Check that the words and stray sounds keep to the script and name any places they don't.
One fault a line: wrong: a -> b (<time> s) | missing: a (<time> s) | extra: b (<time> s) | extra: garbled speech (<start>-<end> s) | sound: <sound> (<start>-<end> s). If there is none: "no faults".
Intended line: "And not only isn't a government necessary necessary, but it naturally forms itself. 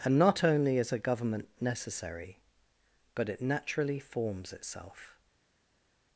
wrong: isn't -> is (0.8 s)
missing: necessary (2.4 s)